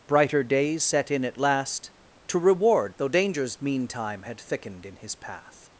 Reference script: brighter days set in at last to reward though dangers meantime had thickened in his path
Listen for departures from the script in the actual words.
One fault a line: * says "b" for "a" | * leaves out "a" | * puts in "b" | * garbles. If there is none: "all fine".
all fine